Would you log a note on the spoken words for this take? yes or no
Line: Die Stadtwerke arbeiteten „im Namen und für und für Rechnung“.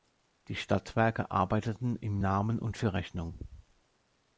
yes